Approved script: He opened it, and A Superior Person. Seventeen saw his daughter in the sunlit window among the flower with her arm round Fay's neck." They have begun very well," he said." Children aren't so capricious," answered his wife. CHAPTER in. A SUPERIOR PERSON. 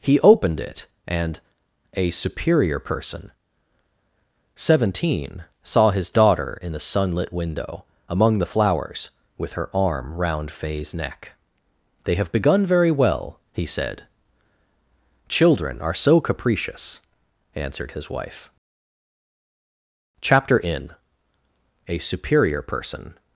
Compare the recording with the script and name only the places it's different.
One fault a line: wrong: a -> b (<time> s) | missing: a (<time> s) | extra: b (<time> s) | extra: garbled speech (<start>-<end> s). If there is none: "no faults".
wrong: flower -> flowers (8.5 s)
wrong: aren't -> are (15.8 s)